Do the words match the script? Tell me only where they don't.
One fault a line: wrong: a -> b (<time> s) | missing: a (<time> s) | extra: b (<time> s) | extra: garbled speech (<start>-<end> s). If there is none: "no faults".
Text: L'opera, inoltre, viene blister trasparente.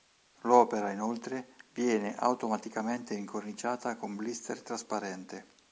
extra: automaticamente incorniciata con (2.1 s)